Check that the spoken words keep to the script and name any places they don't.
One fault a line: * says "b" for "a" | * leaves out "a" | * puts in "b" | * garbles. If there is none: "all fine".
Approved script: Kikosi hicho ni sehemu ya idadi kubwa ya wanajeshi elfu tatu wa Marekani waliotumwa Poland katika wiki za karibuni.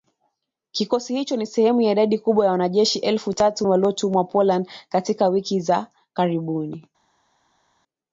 * leaves out "wa Marekani"